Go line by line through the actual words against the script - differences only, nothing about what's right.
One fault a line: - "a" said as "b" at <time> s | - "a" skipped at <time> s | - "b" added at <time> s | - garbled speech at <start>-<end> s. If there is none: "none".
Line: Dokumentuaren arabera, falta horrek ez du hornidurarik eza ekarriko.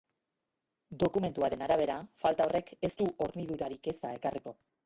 none